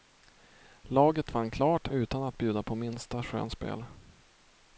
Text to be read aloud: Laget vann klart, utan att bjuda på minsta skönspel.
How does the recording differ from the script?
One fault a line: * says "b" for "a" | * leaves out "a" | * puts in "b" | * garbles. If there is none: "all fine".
all fine